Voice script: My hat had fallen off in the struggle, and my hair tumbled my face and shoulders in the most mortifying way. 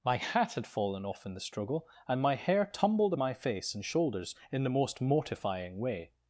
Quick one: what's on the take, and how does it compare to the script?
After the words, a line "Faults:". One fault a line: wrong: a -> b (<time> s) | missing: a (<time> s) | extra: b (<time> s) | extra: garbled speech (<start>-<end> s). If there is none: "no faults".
My hat had fallen off in the struggle, and my hair tumbled my face and shoulders in the most mortifying way.
Faults:
no faults